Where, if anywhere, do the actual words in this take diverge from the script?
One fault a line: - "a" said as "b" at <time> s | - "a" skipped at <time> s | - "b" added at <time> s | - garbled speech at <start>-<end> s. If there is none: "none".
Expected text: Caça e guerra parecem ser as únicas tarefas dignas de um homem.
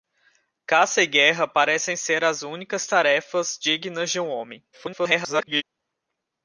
- garbled speech at 4.7-5.6 s